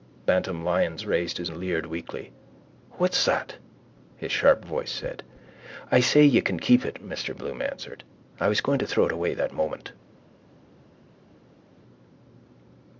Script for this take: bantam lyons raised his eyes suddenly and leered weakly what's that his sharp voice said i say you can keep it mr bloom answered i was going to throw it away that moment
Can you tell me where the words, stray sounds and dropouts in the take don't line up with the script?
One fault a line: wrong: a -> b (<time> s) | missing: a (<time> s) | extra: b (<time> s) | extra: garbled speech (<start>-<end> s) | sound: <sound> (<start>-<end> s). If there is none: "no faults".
missing: eyes suddenly (1.5 s)